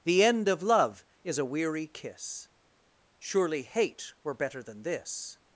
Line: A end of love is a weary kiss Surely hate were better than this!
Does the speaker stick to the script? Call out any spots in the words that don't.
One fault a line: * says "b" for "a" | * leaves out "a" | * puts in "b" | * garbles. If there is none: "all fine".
* says "The" for "A"